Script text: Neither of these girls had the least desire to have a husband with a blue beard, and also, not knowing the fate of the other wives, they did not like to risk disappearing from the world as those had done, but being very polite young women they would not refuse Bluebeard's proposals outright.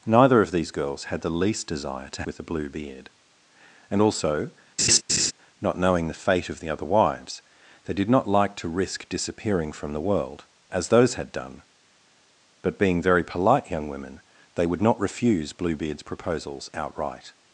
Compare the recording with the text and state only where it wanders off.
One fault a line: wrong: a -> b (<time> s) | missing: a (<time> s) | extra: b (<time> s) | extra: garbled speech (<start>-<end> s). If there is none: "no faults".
missing: have a husband (2.2 s)